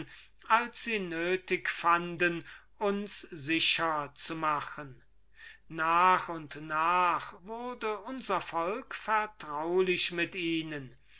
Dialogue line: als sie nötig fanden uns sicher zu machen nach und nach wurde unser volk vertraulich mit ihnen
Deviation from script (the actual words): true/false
false